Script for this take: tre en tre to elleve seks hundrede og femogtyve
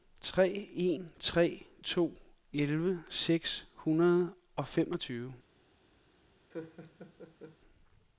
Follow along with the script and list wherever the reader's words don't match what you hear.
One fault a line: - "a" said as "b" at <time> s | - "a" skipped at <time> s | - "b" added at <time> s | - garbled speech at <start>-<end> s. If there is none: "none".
none